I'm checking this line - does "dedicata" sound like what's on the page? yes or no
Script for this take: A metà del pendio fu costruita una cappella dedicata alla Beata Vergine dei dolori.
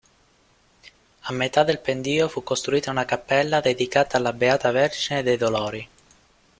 yes